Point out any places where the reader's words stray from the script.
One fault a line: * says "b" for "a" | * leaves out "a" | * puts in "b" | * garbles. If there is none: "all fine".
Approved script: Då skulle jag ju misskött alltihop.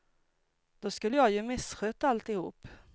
all fine